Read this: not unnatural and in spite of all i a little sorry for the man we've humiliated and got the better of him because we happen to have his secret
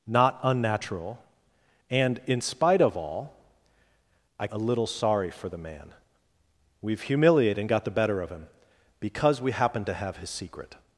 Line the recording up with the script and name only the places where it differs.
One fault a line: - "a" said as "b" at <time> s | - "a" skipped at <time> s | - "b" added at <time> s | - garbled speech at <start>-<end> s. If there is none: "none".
none